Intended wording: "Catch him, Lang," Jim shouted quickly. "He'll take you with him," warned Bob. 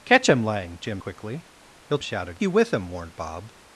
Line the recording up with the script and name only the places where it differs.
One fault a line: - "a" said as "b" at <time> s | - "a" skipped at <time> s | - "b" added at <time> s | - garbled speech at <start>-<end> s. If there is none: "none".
- "shouted" skipped at 1.0 s
- "take" said as "shouted" at 2.0 s